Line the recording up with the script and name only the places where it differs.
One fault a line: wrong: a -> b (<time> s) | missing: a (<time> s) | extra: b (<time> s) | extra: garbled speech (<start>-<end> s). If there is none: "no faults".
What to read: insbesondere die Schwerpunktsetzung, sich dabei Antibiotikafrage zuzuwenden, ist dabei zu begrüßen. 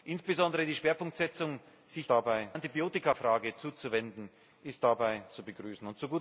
no faults